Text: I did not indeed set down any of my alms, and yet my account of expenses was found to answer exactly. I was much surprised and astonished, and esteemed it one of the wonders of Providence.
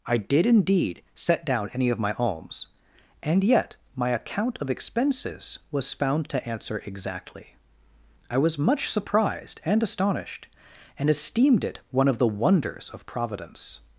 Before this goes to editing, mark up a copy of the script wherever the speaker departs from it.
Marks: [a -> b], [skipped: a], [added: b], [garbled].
I did [skipped: not] indeed set down any of my alms, and yet my account of expenses was found to answer exactly. I was much surprised and astonished, and esteemed it one of the wonders of Providence.